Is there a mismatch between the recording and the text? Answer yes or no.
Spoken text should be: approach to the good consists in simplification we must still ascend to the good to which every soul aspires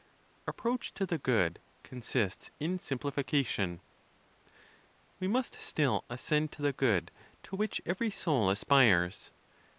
no